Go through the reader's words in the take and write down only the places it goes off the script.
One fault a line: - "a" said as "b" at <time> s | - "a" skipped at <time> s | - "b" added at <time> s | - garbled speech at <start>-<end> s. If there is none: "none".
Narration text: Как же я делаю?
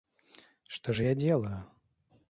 - "Как" said as "Что" at 0.7 s